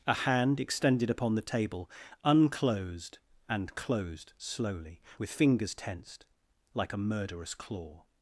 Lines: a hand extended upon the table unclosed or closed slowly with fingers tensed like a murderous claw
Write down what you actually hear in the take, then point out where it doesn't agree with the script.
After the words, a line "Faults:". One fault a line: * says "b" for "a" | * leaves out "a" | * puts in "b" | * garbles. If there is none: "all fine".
a hand extended upon the table unclosed and closed slowly with fingers tensed like a murderous claw
Faults:
* says "and" for "or"